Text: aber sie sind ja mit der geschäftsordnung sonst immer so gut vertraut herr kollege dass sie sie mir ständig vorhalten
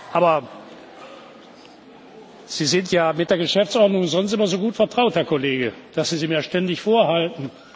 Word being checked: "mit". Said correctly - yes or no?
yes